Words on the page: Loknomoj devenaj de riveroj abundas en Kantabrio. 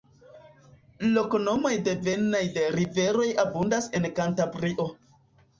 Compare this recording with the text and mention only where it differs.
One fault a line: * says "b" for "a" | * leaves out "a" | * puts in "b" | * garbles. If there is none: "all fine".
all fine